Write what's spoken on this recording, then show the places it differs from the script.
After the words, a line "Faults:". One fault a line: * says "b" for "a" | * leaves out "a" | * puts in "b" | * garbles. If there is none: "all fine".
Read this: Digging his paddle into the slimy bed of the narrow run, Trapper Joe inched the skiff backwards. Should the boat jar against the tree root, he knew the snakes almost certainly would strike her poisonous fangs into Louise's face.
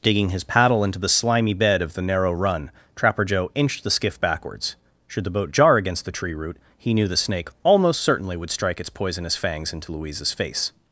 Digging his paddle into the slimy bed of the narrow run, Trapper Joe inched the skiff backwards. Should the boat jar against the tree root, he knew the snake almost certainly would strike its poisonous fangs into Louise's face.
Faults:
* says "snake" for "snakes"
* says "its" for "her"